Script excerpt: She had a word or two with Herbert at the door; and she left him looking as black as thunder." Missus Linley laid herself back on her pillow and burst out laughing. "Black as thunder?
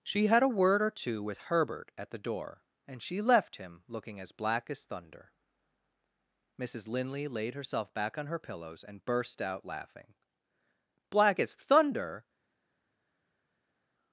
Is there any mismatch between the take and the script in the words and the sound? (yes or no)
yes